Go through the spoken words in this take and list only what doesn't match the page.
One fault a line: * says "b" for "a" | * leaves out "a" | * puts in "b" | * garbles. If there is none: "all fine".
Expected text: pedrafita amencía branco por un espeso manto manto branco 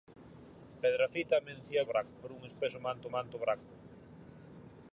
all fine